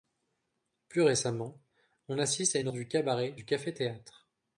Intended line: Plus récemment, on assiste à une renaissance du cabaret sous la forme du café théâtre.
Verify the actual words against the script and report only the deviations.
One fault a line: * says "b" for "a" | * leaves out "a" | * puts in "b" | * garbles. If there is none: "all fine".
* leaves out "renaissance"
* leaves out "sous la forme"